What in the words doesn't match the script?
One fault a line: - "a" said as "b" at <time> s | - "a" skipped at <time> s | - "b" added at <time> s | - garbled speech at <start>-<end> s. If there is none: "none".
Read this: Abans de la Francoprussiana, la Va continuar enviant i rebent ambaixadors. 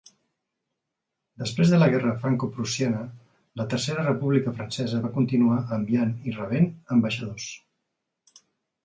- "Abans" said as "Després" at 1.4 s
- "guerra" added at 1.9 s
- "Tercera República Francesa" added at 3.7 s